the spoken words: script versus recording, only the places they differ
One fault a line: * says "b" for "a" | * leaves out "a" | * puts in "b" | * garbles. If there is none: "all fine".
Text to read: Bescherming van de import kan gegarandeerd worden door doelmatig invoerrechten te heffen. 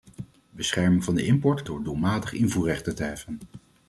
* leaves out "kan gegarandeerd worden"